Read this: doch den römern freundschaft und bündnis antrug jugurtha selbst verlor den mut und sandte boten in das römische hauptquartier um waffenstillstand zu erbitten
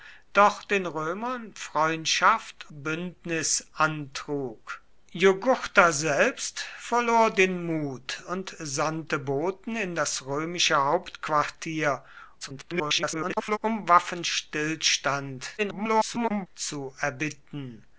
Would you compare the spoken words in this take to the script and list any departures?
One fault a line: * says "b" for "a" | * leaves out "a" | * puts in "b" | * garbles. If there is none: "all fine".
* leaves out "und"
* garbles
* garbles